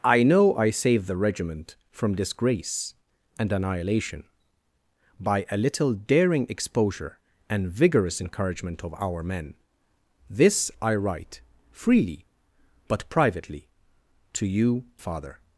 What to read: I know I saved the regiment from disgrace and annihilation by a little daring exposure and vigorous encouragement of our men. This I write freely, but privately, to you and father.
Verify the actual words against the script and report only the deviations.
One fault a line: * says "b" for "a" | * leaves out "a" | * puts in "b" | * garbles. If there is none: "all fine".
* leaves out "and"